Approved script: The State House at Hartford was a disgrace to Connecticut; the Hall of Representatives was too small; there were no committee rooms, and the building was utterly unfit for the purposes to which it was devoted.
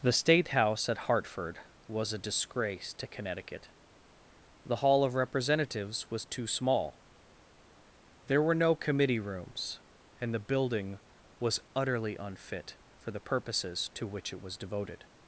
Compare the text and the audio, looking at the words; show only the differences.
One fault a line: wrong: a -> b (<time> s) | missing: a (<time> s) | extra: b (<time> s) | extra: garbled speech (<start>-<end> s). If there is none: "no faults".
no faults